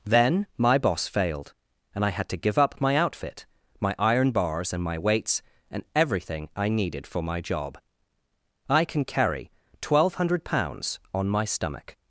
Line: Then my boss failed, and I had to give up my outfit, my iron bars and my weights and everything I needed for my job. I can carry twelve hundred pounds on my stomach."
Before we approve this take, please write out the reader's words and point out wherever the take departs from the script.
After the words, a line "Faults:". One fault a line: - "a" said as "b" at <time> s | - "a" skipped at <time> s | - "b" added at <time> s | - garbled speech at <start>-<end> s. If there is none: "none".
Then my boss failed, and I had to give up my outfit, my iron bars and my weights and everything I needed for my job. I can carry twelve hundred pounds on my stomach."
Faults:
none